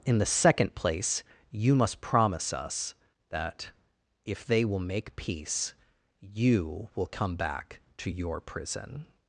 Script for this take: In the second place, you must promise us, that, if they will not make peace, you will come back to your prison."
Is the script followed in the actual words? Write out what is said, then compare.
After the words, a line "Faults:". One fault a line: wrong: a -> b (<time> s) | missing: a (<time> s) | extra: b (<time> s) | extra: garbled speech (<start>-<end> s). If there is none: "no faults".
In the second place, you must promise us, that, if they will make peace, you will come back to your prison."
Faults:
missing: not (4.8 s)